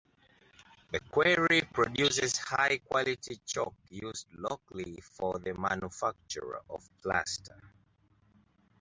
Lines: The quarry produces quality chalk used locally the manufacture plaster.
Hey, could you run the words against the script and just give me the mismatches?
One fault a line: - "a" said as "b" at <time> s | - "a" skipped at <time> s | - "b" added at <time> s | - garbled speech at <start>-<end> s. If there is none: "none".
- "high" added at 2.4 s
- "for" added at 5.0 s
- "of" added at 6.7 s